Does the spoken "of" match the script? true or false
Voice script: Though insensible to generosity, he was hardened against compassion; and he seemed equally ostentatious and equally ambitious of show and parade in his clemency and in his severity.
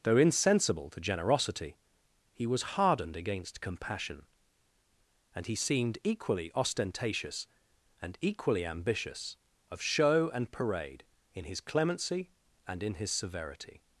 true